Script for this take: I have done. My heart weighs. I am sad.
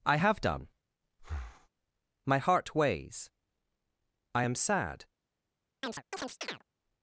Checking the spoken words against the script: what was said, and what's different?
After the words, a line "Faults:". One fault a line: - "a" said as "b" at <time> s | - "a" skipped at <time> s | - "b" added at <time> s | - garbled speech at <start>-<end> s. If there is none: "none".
I have done. My heart weighs. I am sad.
Faults:
none